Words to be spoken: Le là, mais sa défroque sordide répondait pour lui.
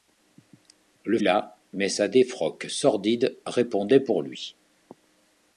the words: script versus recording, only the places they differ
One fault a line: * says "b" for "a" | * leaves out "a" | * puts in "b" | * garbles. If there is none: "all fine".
all fine